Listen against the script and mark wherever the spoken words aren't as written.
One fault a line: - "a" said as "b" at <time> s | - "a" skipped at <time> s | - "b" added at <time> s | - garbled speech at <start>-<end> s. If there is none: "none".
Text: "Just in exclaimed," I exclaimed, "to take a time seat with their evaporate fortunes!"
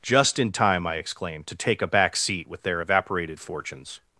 - "exclaimed" said as "time" at 0.5 s
- "time" said as "back" at 1.9 s
- "evaporate" said as "evaporated" at 2.8 s